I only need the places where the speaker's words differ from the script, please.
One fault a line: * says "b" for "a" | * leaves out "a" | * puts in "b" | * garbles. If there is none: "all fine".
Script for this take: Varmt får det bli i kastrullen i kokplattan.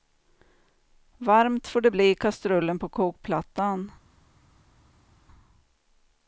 * says "på" for "i"